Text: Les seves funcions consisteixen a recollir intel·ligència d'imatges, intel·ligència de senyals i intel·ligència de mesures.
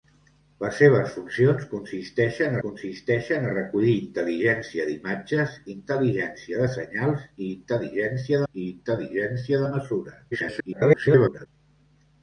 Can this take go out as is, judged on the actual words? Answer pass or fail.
fail